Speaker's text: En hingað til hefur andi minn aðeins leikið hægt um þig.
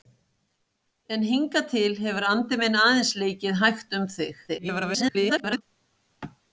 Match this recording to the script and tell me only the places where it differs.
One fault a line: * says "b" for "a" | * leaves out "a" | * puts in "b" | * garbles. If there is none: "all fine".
* garbles